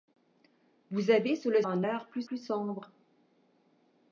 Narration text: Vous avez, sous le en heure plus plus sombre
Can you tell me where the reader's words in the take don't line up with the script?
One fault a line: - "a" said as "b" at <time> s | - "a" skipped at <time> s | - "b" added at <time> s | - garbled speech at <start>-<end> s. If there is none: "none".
none